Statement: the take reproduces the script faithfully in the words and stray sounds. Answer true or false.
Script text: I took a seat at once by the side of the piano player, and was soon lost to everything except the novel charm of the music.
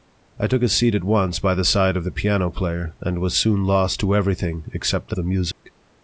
false